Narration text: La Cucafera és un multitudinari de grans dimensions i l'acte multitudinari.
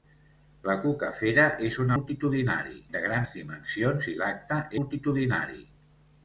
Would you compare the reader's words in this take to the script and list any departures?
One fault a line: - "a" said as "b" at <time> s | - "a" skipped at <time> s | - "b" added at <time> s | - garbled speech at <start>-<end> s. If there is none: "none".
none